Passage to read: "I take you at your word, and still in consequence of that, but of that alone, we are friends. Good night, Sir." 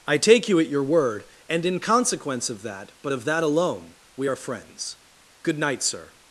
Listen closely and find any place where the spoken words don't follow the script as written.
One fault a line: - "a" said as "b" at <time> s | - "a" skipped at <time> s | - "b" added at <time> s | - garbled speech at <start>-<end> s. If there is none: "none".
- "still" skipped at 1.6 s